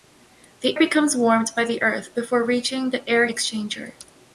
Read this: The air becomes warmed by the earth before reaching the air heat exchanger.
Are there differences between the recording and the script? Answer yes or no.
yes